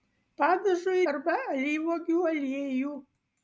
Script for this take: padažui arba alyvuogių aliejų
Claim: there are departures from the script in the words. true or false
false